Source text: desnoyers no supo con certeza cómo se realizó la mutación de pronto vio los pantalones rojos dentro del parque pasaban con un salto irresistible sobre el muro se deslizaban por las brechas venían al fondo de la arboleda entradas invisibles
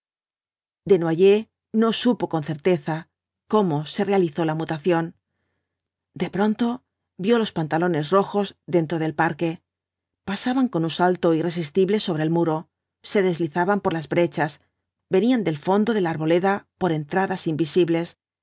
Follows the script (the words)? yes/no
no